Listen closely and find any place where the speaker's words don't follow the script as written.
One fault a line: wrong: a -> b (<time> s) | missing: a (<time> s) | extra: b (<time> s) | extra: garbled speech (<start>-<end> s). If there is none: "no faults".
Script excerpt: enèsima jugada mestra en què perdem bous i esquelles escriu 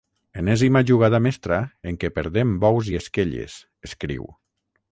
no faults